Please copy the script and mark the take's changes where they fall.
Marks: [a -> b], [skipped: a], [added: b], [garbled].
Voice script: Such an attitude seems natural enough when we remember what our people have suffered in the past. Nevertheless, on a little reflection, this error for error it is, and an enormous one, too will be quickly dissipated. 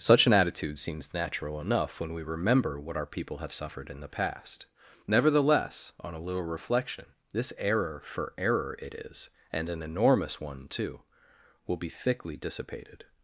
Such an attitude seems natural enough when we remember what our people have suffered in the past. Nevertheless, on a little reflection, this error for error it is, and an enormous one, too will be [quickly -> thickly] dissipated.